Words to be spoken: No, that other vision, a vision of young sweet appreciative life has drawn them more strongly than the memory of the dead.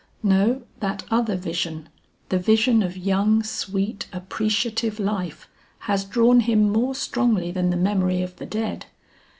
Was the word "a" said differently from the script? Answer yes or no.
yes